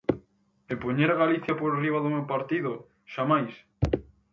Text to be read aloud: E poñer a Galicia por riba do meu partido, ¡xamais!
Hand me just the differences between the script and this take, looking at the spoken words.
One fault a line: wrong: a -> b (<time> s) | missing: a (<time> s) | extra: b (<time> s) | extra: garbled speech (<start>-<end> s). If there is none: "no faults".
no faults